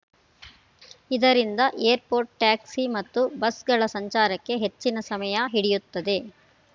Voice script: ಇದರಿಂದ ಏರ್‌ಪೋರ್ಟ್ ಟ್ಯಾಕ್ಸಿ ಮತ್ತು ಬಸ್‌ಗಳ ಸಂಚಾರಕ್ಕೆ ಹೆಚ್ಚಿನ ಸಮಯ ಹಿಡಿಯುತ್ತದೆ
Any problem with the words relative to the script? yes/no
no